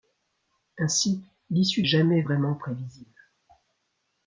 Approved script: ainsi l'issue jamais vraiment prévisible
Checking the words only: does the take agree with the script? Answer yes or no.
yes